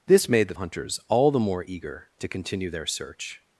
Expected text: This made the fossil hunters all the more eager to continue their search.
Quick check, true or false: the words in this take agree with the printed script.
false